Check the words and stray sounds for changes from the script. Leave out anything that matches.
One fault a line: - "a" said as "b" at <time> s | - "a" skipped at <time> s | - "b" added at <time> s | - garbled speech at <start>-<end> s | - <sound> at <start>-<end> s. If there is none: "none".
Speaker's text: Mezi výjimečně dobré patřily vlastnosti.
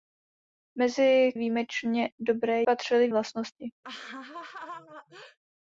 - laugh at 3.8-5.4 s